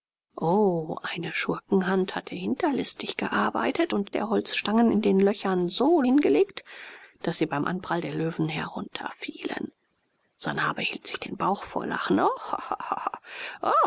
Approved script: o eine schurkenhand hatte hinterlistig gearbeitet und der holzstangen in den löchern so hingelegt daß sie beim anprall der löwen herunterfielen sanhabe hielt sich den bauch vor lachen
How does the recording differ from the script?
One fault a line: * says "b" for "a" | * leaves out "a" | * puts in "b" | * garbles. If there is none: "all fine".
all fine